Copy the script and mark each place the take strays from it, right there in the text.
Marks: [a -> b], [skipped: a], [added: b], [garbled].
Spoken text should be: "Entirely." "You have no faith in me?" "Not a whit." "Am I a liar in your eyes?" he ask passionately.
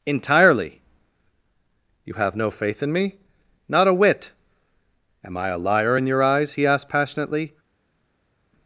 "Entirely." "You have no faith in me?" "Not a whit." "Am I a liar in your eyes?" he [ask -> asked] passionately.